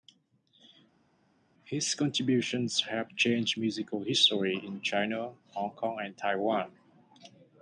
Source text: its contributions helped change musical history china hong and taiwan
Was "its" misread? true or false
true